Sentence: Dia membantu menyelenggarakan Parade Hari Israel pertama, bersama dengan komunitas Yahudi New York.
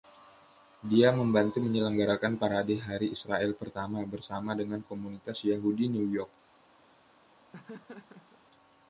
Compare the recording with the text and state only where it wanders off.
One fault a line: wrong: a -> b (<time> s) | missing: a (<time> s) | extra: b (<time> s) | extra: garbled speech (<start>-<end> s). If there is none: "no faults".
no faults